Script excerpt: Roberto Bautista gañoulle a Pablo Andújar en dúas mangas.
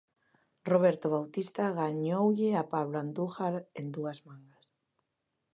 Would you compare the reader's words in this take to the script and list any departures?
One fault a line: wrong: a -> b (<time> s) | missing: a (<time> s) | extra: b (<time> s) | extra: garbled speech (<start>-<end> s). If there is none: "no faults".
no faults